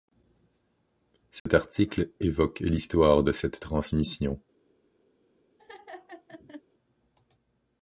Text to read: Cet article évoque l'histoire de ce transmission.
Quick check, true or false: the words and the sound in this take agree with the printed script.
false